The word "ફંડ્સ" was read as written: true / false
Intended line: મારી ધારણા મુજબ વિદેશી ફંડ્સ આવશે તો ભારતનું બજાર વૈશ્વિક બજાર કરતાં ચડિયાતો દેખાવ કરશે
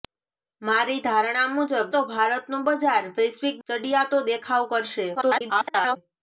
false